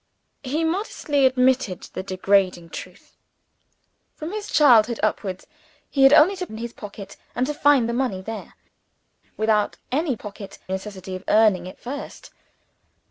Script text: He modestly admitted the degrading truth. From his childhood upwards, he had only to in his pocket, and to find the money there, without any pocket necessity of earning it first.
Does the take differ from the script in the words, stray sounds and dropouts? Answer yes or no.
no